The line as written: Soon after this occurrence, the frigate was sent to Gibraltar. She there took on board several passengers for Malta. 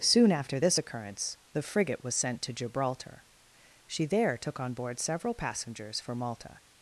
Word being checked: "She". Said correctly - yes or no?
yes